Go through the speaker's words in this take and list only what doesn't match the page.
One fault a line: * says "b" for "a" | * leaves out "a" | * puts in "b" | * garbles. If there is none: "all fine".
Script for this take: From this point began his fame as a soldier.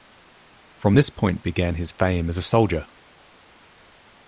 all fine